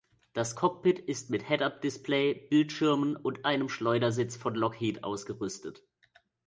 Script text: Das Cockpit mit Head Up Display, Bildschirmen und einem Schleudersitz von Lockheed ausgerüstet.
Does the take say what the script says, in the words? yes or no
no